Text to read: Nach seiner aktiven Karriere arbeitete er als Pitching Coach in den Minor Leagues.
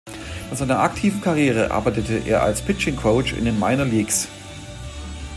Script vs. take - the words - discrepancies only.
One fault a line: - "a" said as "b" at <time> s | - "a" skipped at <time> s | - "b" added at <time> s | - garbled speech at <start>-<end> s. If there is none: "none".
none